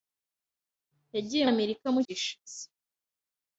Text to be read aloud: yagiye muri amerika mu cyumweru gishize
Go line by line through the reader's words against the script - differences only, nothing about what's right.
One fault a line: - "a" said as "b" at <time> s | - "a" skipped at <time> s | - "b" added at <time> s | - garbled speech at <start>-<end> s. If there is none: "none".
- "muri" skipped at 1.4 s
- "cyumweru" skipped at 2.0 s